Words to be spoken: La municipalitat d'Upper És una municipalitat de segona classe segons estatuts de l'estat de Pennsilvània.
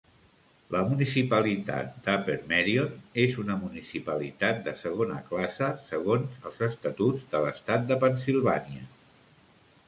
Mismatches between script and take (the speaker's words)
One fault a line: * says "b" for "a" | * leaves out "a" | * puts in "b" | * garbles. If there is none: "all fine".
* puts in "Merion"
* puts in "els"